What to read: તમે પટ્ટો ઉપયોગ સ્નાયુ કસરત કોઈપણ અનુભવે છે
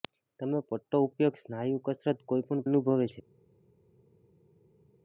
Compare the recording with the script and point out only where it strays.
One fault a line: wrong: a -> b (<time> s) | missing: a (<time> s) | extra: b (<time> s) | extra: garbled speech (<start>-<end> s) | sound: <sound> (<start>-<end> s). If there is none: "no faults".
no faults